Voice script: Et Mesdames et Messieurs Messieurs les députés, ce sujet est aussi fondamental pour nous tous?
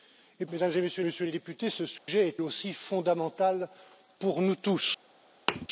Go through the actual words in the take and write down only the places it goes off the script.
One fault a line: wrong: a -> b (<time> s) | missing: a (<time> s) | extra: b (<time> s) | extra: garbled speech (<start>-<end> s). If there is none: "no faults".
no faults